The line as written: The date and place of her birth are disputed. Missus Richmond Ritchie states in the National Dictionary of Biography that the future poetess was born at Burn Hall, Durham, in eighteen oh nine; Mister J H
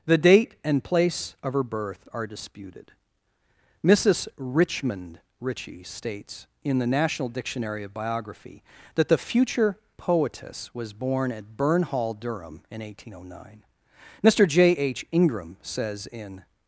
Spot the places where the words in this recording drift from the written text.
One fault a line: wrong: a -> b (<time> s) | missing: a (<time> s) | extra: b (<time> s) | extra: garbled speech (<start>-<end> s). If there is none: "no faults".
extra: Ingram says in (15.1 s)